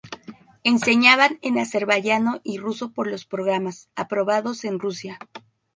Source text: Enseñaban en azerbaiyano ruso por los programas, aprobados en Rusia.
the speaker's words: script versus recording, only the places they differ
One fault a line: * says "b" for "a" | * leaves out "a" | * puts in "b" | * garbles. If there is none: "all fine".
* puts in "y"